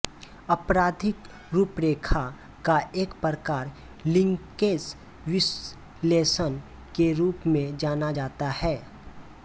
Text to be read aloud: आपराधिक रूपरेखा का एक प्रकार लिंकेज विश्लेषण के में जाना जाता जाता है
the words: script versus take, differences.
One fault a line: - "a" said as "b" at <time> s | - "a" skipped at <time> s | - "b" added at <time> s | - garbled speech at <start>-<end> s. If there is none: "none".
- "रूप" added at 7.1 s
- "जाता" skipped at 8.5 s